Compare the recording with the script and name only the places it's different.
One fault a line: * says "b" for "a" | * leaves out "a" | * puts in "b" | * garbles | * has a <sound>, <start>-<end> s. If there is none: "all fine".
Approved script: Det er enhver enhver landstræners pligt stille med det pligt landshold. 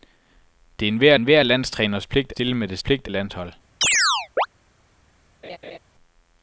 * has a chirp, 3.8-4.5 s
* has a laugh, 5.4-5.8 s